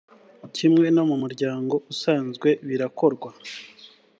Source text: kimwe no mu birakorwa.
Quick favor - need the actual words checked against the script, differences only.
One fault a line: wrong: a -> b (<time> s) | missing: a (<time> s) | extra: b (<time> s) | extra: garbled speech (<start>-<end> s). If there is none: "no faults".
extra: muryango usanzwe (1.2 s)